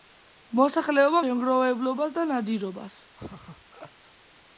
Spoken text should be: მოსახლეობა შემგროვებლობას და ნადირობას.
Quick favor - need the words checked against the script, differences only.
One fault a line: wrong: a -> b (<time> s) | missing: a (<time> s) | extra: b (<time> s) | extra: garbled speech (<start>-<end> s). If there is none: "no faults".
no faults